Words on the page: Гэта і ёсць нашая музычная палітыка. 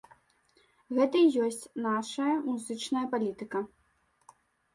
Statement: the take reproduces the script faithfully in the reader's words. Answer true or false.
true